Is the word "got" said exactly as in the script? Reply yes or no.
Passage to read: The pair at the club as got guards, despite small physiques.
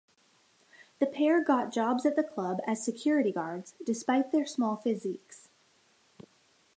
no